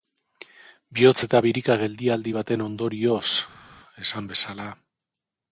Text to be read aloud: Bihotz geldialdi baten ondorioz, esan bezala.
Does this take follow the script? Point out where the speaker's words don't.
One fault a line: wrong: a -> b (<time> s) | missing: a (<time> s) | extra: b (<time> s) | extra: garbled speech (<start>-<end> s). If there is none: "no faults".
extra: eta birika (1.3 s)